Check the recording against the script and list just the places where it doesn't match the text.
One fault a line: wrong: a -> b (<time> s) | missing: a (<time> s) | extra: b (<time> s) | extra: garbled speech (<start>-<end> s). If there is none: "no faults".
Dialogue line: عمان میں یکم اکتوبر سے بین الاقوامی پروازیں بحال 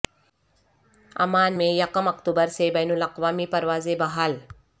no faults